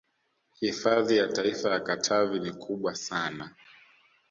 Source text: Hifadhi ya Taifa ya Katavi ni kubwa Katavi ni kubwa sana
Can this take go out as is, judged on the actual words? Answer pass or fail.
fail